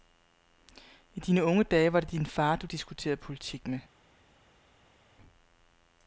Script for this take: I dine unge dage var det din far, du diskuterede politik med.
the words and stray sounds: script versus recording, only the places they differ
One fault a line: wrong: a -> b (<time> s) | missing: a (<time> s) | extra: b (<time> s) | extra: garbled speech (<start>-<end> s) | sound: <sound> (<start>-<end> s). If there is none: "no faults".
no faults